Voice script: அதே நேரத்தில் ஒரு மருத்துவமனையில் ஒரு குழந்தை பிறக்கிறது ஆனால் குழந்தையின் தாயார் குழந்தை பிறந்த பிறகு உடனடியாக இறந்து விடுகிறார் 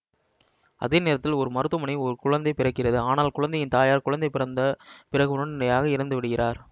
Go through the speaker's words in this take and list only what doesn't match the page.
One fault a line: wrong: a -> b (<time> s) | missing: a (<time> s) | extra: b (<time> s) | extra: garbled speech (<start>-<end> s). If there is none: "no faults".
no faults